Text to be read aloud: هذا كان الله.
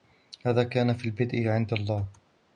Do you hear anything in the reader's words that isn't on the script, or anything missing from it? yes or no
yes